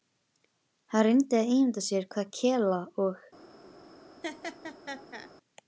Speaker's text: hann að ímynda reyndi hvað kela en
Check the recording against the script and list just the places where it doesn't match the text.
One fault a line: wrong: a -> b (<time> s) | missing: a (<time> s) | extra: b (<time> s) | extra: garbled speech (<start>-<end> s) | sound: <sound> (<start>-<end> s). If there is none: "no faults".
extra: reyndi (1.1 s)
wrong: reyndi -> sér (1.9 s)
wrong: en -> og (3.1 s)
sound: laugh (4.2-5.3 s)